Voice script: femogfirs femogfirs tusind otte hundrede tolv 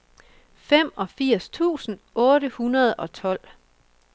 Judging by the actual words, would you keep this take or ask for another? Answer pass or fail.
fail